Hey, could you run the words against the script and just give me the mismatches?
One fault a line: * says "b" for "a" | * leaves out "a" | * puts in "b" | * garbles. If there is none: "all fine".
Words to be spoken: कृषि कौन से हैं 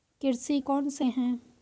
all fine